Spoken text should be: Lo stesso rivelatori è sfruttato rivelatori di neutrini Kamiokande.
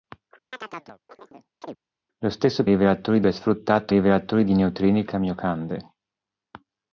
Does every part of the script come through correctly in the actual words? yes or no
yes